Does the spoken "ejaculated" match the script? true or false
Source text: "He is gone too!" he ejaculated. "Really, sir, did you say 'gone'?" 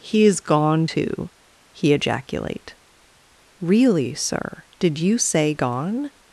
false